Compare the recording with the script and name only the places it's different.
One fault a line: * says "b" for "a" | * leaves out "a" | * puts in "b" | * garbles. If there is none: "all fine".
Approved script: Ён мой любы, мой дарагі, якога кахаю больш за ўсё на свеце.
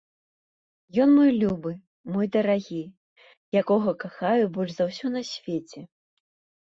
all fine